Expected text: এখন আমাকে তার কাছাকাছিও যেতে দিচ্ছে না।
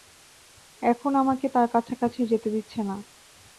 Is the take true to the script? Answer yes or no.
yes